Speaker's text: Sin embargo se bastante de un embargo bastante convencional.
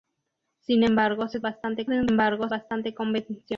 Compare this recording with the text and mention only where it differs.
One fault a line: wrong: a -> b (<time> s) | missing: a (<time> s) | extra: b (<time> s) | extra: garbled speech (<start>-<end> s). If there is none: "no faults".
no faults